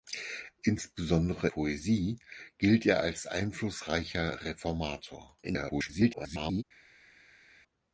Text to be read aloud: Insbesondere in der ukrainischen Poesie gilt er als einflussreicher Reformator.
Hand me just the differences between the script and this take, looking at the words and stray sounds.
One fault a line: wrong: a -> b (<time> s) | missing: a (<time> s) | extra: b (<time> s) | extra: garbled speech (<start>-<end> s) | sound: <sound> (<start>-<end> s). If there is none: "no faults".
missing: in der ukrainischen (1.5 s)
extra: garbled speech (5.4-6.6 s)